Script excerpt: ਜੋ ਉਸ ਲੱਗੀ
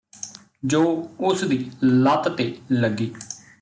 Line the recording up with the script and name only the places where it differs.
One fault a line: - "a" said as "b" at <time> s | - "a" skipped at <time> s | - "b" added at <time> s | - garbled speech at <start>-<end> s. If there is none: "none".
- "ਦੀ ਲੱਤ ਤੇ" added at 1.4 s